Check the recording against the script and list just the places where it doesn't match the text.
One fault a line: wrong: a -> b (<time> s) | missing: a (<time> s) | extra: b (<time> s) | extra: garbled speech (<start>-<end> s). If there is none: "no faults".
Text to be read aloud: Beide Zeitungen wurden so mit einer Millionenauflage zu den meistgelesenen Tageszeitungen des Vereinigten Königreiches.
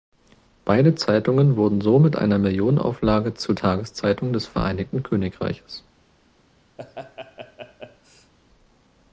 missing: den meistgelesenen (3.5 s)